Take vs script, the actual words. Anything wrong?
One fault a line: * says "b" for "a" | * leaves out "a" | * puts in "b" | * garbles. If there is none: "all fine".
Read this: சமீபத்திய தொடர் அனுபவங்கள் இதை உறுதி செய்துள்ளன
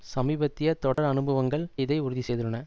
all fine